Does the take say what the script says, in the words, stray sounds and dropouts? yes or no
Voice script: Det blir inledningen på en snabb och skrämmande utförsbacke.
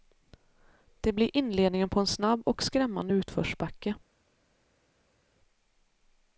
yes